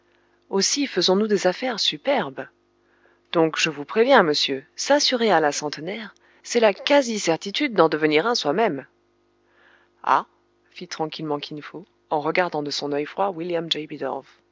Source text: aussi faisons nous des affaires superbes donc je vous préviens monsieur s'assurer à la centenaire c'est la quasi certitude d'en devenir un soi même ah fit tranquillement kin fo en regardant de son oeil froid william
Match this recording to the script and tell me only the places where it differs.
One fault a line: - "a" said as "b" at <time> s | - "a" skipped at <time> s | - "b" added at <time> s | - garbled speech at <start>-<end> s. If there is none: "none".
none